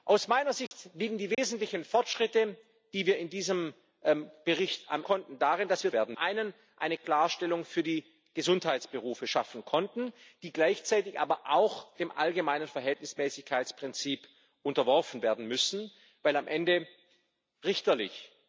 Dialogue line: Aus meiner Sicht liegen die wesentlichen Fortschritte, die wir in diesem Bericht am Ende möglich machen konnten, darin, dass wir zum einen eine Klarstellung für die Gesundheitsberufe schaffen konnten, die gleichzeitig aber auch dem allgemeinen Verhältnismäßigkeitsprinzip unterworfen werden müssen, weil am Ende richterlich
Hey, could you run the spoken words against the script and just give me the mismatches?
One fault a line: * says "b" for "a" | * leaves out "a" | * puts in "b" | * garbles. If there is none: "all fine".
* leaves out "Ende möglich machen"
* says "werden" for "zum"